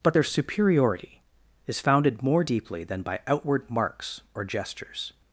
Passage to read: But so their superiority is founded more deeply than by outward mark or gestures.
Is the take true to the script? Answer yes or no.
no